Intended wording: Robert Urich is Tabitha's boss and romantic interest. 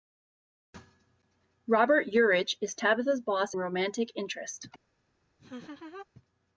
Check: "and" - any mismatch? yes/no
yes